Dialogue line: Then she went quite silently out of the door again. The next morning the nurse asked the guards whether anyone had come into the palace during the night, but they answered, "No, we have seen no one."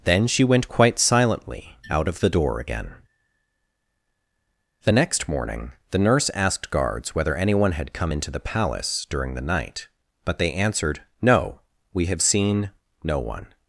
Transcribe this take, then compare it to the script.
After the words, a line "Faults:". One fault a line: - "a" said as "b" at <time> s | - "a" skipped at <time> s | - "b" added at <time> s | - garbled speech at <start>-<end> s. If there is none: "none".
Then she went quite silently out of the door again. The next morning the nurse asked guards whether anyone had come into the palace during the night, but they answered, "No, we have seen no one."
Faults:
- "the" skipped at 6.7 s